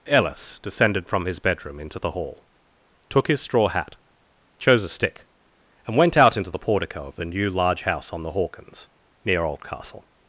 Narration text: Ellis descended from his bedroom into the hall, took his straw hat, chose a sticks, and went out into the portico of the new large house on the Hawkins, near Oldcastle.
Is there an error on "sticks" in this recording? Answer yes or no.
yes